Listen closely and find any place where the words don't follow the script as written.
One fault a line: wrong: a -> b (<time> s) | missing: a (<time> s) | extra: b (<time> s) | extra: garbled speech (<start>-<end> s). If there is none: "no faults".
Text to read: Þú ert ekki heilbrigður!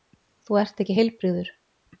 no faults